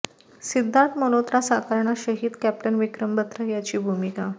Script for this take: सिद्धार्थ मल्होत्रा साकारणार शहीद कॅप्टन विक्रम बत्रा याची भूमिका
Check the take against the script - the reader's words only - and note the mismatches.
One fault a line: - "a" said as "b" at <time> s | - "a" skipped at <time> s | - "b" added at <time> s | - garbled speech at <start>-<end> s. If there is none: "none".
none